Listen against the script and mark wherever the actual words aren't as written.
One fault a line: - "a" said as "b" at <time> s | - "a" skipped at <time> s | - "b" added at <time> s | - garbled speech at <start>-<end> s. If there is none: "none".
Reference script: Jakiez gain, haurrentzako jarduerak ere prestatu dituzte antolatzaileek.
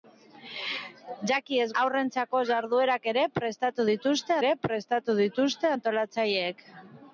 - "gain" skipped at 1.7 s
- "ere prestatu dituzte" added at 4.4 s